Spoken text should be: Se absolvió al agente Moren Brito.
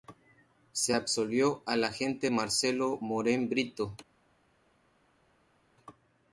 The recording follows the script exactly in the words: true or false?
false